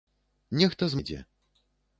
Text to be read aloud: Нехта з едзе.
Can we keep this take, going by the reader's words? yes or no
yes